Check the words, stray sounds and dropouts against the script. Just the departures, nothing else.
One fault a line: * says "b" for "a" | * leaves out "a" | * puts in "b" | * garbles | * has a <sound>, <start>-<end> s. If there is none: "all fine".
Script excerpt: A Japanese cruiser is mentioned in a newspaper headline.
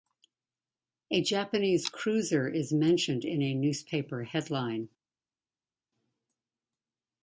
all fine